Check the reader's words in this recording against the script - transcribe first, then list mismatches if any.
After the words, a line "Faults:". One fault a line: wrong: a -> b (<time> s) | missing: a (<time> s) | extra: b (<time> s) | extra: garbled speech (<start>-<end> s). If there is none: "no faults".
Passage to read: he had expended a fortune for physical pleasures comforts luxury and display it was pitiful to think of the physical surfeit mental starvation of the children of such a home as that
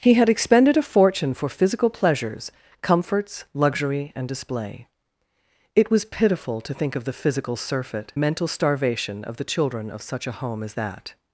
he had expended a fortune for physical pleasures comforts luxury and display it was pitiful to think of the physical surfeit mental starvation of the children of such a home as that
Faults:
no faults